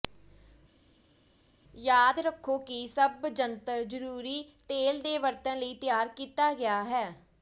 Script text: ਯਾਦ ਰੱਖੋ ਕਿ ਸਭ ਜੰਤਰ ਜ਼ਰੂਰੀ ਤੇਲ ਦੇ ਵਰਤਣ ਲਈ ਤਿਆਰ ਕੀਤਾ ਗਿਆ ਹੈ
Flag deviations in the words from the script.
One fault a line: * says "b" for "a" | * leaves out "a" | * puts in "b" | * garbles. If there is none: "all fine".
all fine